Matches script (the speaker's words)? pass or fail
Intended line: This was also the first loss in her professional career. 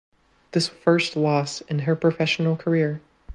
fail